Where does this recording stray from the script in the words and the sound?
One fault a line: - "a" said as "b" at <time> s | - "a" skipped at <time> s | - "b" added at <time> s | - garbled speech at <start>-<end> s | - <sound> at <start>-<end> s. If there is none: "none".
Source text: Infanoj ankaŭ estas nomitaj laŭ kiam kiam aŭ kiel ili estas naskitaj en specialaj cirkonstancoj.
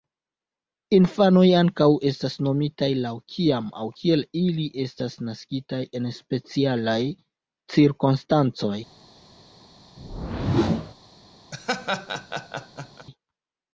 - "kiam" skipped at 3.7 s
- whoosh at 10.0-10.9 s
- laugh at 11.5-13.1 s